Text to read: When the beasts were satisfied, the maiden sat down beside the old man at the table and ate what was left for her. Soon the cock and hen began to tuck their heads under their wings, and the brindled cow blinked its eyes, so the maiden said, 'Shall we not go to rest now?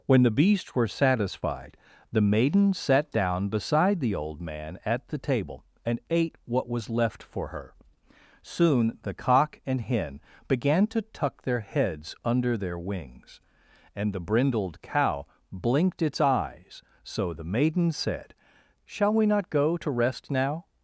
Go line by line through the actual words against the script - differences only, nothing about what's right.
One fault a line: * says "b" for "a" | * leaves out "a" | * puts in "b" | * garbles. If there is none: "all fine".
all fine